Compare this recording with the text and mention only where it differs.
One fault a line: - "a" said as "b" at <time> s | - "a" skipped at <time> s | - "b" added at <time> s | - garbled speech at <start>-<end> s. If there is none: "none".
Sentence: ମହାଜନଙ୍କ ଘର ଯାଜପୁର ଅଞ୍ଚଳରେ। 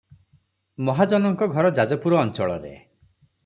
none